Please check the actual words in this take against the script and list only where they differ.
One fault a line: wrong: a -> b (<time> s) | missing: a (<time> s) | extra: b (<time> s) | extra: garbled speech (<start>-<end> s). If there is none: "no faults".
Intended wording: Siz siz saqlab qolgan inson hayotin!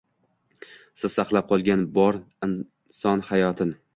missing: siz (1.2 s)
extra: bor (2.0 s)